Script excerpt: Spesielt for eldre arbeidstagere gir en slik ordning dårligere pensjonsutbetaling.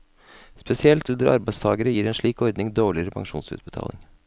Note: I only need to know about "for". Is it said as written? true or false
false